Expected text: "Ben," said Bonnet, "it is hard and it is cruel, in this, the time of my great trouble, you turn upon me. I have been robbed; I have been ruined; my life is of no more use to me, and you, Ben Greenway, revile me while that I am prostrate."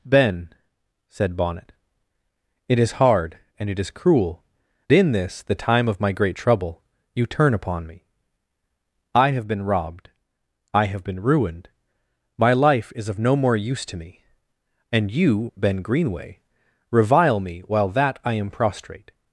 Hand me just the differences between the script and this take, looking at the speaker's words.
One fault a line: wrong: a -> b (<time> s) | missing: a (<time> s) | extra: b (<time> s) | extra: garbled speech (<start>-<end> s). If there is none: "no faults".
no faults